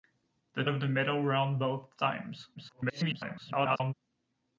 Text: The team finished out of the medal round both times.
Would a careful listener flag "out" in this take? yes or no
yes